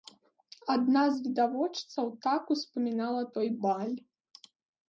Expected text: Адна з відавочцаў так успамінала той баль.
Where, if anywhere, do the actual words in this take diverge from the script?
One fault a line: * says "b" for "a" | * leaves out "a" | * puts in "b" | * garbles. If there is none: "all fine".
all fine